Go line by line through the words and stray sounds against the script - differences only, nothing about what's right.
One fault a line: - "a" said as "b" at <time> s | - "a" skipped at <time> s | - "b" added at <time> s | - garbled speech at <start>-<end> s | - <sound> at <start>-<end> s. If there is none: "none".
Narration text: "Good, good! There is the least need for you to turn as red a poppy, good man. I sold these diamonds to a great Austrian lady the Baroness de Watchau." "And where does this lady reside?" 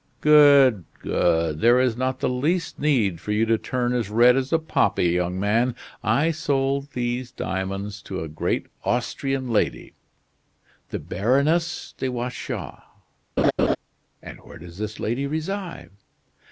- "not" added at 1.9 s
- "as" added at 4.3 s
- "good" said as "young" at 5.1 s
- laugh at 13.4-13.8 s